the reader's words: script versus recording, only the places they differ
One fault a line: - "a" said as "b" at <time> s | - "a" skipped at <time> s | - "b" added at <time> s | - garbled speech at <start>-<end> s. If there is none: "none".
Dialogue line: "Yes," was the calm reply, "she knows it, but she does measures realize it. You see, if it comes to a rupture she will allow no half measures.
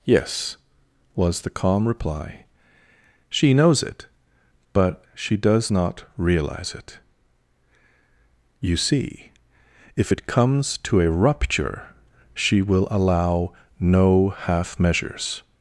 - "measures" said as "not" at 5.7 s